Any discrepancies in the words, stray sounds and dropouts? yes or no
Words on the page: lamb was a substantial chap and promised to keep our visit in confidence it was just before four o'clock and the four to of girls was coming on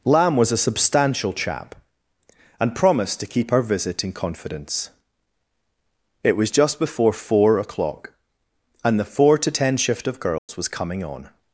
yes